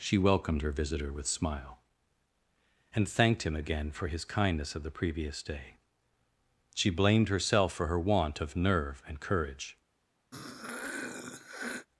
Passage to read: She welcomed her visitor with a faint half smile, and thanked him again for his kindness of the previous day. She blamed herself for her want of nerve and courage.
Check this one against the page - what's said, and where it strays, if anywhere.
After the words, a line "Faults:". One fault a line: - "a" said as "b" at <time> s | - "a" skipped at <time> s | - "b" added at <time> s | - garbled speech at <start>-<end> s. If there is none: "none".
She welcomed her visitor with smile, and thanked him again for his kindness of the previous day. She blamed herself for her want of nerve and courage.
Faults:
- "a faint half" skipped at 1.3 s